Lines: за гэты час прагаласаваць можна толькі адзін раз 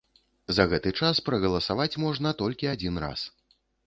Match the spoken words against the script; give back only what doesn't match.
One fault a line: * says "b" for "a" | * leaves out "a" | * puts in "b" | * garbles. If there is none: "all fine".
all fine